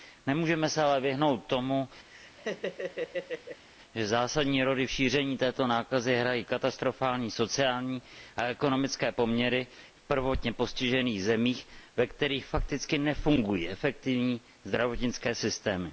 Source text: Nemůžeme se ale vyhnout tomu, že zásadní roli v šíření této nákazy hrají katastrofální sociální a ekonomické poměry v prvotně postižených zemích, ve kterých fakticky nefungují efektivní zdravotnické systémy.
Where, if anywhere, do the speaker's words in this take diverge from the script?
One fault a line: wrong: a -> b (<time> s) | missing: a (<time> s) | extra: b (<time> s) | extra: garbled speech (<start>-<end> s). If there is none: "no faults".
no faults